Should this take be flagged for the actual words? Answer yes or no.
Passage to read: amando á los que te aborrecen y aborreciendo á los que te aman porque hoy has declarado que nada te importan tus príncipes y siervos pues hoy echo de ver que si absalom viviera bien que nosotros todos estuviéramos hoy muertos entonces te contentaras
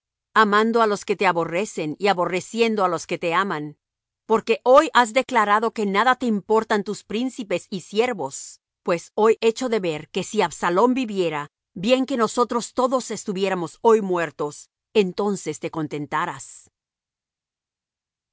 no